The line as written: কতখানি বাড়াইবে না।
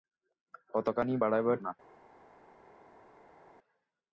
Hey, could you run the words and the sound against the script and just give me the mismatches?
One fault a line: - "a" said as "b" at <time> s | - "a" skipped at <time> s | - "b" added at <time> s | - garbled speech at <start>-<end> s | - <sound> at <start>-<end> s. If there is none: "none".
none